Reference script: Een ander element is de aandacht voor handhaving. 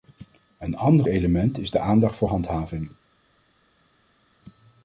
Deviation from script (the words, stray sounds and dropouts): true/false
false